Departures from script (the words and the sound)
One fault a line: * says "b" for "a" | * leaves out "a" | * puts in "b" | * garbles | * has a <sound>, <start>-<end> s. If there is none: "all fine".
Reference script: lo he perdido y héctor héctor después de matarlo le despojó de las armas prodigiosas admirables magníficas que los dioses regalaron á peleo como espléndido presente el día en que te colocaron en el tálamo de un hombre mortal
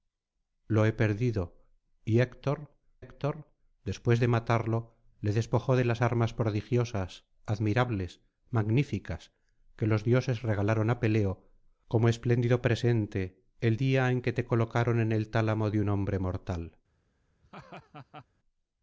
* has a laugh, 17.4-18.3 s